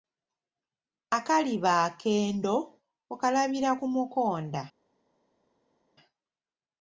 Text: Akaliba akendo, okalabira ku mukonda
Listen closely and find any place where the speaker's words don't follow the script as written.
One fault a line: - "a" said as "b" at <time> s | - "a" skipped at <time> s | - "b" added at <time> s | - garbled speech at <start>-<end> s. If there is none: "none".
none